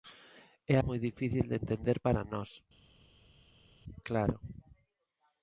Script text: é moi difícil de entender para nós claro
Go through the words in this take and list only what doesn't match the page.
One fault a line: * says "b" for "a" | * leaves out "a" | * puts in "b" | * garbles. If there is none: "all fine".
all fine